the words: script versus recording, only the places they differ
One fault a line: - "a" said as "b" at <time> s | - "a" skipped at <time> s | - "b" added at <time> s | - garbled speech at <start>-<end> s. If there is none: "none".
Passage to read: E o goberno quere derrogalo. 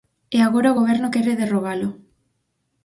- "agora" added at 0.5 s